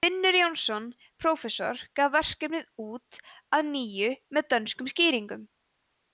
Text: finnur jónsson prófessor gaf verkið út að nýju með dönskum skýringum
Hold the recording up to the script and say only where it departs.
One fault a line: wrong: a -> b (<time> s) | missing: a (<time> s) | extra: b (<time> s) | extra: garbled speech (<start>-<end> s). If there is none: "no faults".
no faults